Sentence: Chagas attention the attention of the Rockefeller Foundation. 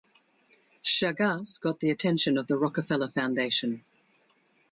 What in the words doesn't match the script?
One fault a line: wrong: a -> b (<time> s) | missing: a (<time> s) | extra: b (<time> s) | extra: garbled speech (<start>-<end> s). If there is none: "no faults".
wrong: attention -> got (1.6 s)